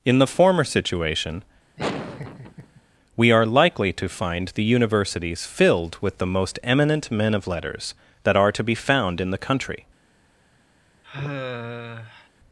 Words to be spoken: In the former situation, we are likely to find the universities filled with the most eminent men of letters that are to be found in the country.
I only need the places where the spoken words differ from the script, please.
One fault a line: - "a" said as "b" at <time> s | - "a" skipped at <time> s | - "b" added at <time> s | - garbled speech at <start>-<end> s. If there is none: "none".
none